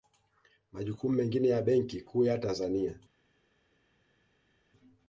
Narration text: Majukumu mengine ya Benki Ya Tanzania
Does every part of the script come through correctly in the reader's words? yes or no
no